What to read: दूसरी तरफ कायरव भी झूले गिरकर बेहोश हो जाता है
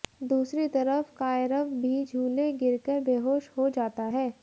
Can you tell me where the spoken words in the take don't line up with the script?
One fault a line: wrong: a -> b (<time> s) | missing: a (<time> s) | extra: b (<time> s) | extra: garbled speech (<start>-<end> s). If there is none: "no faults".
no faults